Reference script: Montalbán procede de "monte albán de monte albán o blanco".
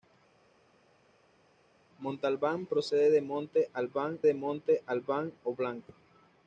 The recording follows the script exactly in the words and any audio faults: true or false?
true